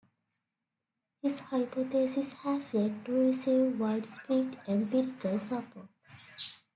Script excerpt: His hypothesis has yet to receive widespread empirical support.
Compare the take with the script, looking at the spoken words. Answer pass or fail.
pass